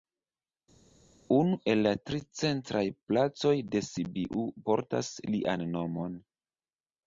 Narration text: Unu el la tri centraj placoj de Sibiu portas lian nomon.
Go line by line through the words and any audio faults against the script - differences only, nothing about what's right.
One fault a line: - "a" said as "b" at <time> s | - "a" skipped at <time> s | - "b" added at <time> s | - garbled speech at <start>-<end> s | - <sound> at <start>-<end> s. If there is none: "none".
none